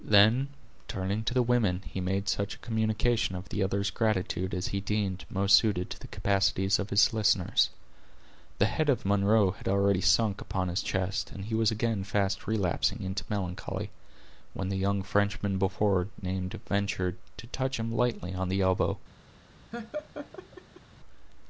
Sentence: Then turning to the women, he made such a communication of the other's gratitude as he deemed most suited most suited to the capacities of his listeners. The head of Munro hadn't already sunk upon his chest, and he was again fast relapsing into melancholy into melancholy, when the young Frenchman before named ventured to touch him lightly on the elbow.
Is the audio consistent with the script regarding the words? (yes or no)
no